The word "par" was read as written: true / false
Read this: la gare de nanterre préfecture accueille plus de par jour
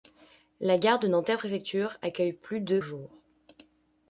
false